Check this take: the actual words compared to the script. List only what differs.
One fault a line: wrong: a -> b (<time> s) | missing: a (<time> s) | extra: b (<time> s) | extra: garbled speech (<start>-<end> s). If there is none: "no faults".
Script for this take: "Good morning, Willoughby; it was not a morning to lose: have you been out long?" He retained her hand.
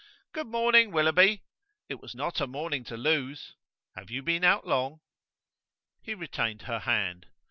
no faults